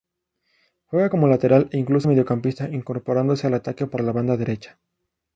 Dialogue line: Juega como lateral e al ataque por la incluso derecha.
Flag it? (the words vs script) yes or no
yes